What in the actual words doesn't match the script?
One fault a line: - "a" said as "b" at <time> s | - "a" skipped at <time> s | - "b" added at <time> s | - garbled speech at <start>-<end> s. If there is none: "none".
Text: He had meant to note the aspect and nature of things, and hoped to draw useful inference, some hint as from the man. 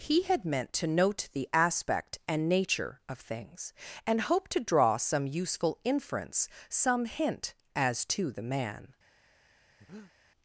- "some" added at 5.0 s
- "from" said as "to" at 8.1 s